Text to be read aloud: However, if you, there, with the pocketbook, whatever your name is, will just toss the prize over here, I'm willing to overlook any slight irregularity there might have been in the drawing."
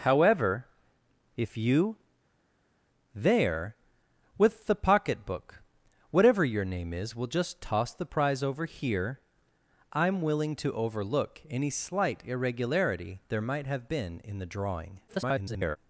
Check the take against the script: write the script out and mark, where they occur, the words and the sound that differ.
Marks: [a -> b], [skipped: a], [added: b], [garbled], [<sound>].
However, if you, there, with the pocketbook, whatever your name is, will just toss the prize over here, I'm willing to overlook any slight irregularity there might have been in the drawing." [garbled]